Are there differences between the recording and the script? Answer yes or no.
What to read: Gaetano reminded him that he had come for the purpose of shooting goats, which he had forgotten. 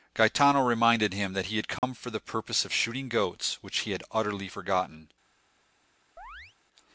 yes